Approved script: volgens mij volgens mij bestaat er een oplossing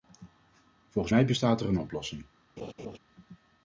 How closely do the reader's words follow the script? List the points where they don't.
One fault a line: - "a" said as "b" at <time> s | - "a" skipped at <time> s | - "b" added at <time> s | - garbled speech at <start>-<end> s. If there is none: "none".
- "volgens mij" skipped at 1.2 s